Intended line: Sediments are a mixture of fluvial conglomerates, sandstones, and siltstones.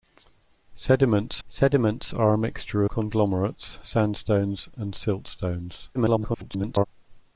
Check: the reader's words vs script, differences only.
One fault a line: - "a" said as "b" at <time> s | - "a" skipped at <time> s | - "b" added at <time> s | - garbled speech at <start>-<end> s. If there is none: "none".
- "sediments" added at 1.5 s
- "of fluvial" skipped at 2.8 s
- garbled speech at 5.9-6.9 s